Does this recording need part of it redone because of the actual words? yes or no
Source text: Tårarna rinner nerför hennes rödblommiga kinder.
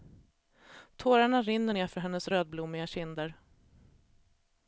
no